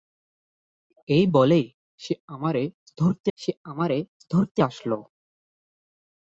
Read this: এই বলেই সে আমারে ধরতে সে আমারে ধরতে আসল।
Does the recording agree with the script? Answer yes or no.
yes